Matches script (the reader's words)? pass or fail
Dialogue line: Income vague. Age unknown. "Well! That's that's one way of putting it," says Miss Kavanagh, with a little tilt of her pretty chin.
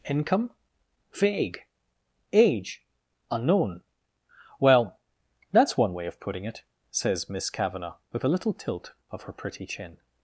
fail